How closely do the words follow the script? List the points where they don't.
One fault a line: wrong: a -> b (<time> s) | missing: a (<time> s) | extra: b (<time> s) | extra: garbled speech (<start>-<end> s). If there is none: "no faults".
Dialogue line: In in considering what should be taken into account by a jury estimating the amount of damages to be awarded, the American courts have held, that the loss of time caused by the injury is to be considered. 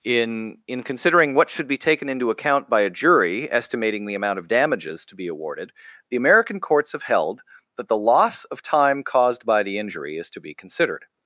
no faults